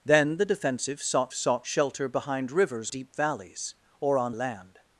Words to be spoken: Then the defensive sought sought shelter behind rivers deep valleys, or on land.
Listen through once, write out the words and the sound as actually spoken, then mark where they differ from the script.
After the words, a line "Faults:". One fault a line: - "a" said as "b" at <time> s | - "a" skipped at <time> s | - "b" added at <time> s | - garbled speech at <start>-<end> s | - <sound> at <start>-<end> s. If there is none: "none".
Then the defensive sought sought shelter behind rivers deep valleys, or on land.
Faults:
none